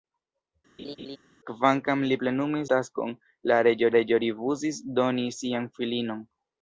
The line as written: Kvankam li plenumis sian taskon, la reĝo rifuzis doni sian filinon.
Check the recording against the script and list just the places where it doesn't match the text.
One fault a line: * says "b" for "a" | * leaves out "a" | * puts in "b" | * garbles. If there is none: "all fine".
* leaves out "sian"
* puts in "reĝo"